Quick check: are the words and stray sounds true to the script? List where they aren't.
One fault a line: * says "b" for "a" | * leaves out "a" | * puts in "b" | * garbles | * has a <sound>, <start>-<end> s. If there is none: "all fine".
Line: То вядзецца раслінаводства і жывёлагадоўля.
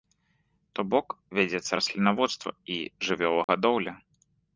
* puts in "бок"
* has a dropout, 3.4-3.5 s